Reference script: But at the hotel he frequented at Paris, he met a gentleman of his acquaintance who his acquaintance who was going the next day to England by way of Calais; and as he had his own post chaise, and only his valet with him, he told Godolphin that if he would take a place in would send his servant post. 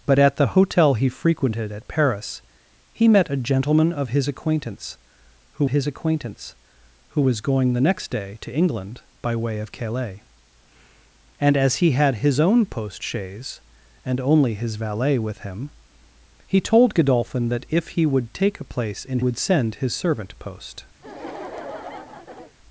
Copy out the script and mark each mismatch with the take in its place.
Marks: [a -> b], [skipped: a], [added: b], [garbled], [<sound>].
But at the hotel he frequented at Paris, he met a gentleman of his acquaintance who his acquaintance who was going the next day to England by way of Calais; and as he had his own post chaise, and only his valet with him, he told Godolphin that if he would take a place in would send his servant post. [laugh]